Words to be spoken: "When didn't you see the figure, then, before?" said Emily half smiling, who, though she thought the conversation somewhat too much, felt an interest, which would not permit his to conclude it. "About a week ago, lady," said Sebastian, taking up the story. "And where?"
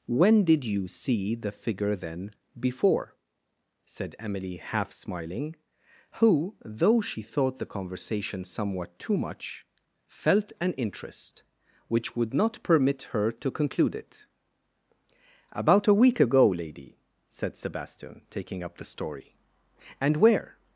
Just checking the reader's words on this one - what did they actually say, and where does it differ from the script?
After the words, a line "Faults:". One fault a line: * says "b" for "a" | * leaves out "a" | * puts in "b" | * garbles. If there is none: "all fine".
"When did you see the figure, then, before?" said Emily half smiling, who, though she thought the conversation somewhat too much, felt an interest, which would not permit her to conclude it. "About a week ago, lady," said Sebastian, taking up the story. "And where?"
Faults:
* says "did" for "didn't"
* says "her" for "his"